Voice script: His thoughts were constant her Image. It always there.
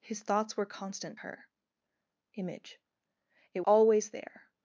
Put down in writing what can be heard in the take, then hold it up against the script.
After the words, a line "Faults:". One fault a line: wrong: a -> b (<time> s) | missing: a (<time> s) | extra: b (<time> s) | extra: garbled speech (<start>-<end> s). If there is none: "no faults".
His thoughts were constant her Image. It always there.
Faults:
no faults